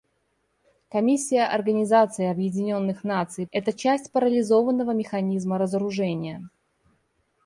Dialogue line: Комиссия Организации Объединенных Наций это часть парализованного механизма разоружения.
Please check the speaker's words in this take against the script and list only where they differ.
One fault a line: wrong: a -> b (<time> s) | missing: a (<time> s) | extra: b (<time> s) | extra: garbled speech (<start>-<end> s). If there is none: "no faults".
no faults